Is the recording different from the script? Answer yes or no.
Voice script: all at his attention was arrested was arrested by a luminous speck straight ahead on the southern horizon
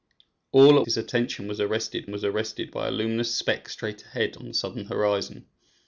no